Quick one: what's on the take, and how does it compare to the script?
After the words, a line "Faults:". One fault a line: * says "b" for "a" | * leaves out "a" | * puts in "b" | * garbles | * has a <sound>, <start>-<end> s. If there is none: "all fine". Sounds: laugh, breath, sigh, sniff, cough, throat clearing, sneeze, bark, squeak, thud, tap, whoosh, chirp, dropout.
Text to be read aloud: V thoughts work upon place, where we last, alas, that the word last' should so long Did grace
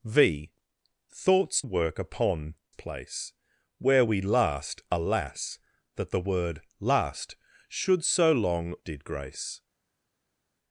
V thoughts work upon place, where we last, alas, that the word last' should so long Did grace
Faults:
all fine